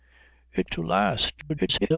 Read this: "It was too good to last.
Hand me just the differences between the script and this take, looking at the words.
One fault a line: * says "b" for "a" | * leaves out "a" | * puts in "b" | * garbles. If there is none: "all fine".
* leaves out "was too good"
* garbles